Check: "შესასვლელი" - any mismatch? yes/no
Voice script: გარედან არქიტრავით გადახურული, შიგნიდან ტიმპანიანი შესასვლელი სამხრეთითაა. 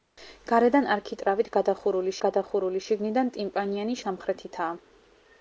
yes